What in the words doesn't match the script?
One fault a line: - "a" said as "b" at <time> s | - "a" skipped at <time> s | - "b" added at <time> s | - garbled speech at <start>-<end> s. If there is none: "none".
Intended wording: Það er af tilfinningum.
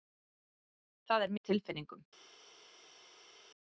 none